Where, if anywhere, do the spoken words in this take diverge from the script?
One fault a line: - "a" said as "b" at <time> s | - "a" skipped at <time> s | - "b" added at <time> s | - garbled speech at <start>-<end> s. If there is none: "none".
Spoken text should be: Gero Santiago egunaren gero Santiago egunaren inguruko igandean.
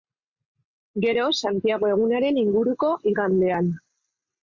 - "gero Santiago egunaren" skipped at 2.4 s